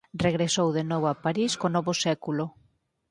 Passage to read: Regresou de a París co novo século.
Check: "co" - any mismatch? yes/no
no